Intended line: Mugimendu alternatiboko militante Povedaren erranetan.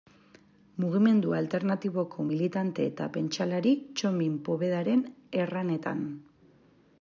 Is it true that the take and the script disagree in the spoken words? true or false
true